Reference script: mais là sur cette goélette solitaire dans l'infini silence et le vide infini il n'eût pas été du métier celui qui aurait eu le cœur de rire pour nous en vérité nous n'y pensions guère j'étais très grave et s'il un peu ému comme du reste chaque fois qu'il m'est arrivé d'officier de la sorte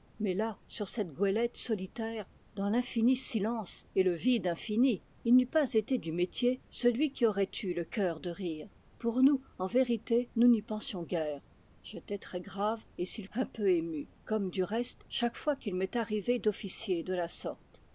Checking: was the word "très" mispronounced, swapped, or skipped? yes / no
no